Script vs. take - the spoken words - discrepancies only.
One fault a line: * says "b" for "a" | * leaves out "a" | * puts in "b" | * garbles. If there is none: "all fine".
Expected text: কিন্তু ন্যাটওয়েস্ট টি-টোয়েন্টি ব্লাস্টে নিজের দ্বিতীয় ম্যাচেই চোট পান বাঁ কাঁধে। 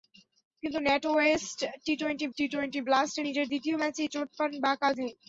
* puts in "টি-টোয়েন্টি"